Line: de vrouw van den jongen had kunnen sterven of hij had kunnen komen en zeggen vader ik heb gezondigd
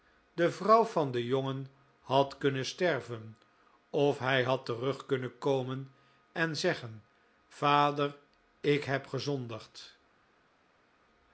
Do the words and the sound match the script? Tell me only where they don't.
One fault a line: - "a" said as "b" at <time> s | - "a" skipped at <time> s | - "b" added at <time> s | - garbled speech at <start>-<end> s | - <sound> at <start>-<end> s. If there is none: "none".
- "terug" added at 4.7 s